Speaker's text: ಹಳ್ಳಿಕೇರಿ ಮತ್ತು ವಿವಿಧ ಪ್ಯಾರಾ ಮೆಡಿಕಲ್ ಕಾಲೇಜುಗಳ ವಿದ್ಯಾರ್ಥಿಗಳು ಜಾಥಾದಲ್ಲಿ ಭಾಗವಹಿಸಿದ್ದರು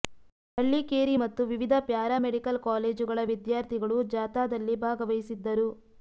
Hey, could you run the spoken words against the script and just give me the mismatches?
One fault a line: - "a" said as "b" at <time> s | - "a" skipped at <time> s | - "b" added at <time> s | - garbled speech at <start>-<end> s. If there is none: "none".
none